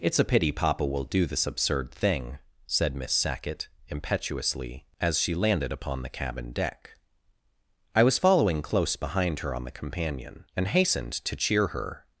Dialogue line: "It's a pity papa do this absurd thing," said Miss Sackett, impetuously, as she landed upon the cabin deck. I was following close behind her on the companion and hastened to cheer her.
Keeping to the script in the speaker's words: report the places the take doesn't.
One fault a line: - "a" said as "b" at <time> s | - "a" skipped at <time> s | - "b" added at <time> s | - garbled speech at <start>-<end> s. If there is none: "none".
- "will" added at 0.8 s